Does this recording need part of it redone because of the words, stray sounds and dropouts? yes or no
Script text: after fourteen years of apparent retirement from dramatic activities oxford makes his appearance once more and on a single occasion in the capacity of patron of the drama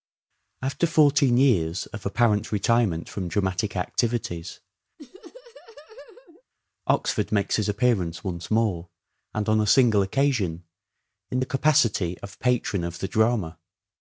yes